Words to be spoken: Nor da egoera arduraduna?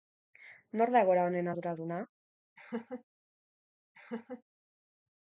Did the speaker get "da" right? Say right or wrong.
right